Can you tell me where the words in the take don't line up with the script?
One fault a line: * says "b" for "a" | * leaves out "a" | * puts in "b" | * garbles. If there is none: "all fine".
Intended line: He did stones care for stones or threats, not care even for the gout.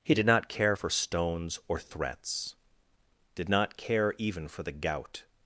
* says "not" for "stones"
* puts in "did"